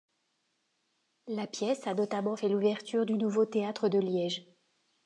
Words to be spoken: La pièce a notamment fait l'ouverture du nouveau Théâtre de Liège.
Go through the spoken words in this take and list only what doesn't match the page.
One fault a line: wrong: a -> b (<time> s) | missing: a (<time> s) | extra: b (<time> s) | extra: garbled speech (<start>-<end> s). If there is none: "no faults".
no faults